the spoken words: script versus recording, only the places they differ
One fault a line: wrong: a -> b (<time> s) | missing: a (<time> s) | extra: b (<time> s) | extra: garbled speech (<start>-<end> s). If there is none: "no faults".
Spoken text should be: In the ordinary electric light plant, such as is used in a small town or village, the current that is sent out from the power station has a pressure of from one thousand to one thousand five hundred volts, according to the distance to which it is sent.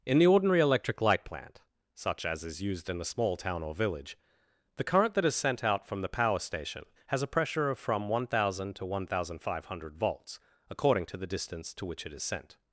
no faults